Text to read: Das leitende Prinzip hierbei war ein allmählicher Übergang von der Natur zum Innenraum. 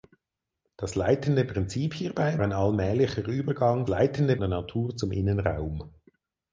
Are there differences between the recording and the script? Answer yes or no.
yes